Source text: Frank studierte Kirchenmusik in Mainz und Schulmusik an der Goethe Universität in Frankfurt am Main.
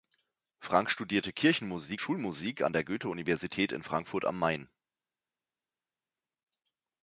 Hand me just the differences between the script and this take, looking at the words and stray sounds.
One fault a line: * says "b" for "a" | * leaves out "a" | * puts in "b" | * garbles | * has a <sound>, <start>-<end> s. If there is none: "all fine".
* leaves out "in Mainz und"